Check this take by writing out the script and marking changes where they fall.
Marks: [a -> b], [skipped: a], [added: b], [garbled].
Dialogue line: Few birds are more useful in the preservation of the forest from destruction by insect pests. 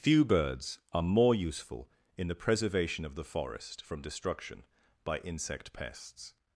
Few birds are more useful in the preservation of the forest from destruction by insect pests.